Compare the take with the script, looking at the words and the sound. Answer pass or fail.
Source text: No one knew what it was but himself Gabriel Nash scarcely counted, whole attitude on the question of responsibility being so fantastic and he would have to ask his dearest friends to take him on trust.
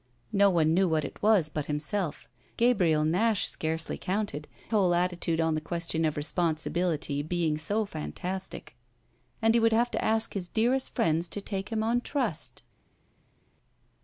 pass